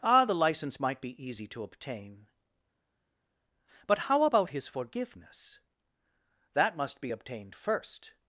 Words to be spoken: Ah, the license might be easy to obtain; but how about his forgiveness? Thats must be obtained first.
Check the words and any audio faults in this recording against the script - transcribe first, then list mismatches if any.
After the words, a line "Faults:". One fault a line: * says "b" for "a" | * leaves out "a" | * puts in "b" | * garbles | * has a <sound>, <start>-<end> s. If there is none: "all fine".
Ah, the license might be easy to obtain; but how about his forgiveness? That must be obtained first.
Faults:
* says "That" for "Thats"